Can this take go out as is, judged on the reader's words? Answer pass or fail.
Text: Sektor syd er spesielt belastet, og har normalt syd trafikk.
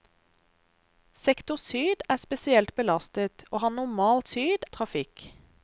pass